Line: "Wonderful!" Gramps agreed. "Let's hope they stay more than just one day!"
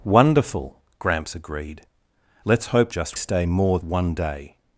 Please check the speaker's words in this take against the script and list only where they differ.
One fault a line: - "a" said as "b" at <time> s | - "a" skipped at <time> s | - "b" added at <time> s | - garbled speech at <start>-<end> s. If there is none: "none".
- "they" said as "just" at 2.9 s
- "than just" skipped at 3.8 s